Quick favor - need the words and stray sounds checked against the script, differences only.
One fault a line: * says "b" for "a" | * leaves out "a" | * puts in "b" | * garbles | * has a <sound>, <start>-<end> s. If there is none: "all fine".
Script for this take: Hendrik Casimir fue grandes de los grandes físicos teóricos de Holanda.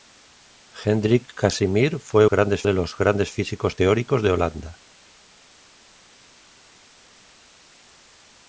all fine